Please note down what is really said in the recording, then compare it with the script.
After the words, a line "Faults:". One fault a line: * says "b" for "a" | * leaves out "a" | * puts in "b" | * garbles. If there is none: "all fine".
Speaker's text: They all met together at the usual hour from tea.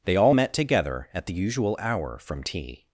They all met together at the usual hour from tea.
Faults:
all fine